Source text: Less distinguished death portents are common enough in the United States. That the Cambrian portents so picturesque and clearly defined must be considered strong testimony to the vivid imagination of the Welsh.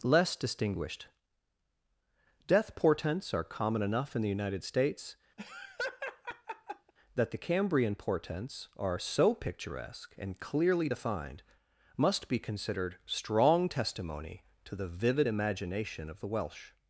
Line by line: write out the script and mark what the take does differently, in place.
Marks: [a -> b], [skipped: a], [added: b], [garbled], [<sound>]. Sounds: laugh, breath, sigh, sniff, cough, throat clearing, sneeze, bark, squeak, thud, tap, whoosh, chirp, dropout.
Less distinguished death portents are common enough in the United States. [laugh] That the Cambrian portents [added: are] so picturesque and clearly defined must be considered strong testimony to the vivid imagination of the Welsh.